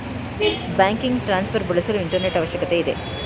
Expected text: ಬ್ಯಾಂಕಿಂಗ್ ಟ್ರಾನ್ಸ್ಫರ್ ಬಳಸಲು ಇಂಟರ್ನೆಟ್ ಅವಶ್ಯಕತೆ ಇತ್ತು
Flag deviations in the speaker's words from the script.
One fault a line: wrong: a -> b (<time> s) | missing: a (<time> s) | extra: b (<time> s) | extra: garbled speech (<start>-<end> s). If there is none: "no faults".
wrong: ಇತ್ತು -> ಇದೆ (2.8 s)